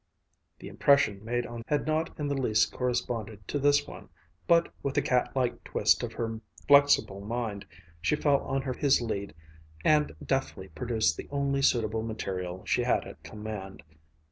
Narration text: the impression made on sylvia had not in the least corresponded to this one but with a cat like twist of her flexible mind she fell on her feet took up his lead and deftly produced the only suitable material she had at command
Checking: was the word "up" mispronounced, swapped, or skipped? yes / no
yes